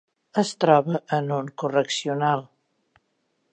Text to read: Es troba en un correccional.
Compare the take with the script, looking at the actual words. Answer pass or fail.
pass